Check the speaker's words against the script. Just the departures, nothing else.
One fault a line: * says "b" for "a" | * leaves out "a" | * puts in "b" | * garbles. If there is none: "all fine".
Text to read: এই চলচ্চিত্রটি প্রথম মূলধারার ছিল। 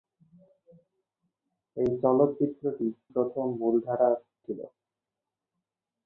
all fine